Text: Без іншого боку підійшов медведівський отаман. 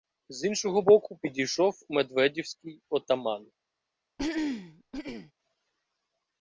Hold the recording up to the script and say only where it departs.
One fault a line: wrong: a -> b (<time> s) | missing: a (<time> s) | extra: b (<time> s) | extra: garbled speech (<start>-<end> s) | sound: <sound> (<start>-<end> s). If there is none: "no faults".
wrong: Без -> З (0.3 s)
sound: throat clearing (4.2-5.3 s)